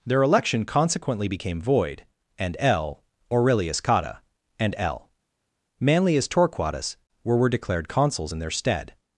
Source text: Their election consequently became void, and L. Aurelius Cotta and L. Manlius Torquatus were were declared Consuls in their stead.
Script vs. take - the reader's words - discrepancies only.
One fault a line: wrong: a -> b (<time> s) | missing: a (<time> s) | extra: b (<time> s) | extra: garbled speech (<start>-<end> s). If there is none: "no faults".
no faults